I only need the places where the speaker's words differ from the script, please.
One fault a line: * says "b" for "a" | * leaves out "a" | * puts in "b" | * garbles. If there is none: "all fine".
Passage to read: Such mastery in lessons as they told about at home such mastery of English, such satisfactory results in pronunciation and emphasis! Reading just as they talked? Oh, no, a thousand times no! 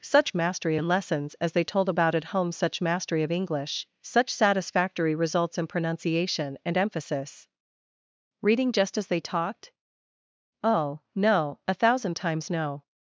all fine